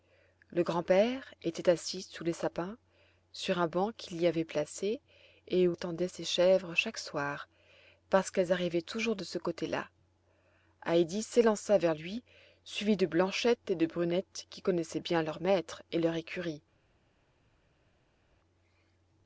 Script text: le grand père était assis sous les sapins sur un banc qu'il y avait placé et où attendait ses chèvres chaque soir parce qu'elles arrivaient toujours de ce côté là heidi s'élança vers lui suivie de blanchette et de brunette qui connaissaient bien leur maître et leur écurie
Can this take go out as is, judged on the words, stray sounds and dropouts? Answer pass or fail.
pass